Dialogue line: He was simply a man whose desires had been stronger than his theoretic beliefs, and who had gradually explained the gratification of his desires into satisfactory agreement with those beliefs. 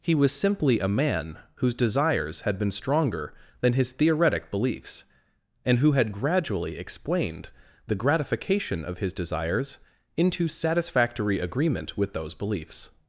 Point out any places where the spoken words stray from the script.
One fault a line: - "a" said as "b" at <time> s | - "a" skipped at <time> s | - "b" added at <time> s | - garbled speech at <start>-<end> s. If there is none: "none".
none